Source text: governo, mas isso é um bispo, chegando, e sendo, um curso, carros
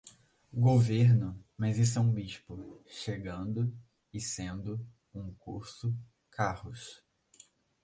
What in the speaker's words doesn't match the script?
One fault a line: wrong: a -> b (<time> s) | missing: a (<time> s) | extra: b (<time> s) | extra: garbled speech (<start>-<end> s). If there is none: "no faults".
no faults